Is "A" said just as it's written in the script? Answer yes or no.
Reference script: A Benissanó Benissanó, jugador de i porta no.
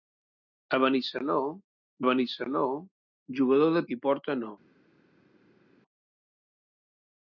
yes